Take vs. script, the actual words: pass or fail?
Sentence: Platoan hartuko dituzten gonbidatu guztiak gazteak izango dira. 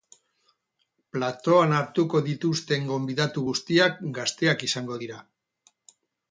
pass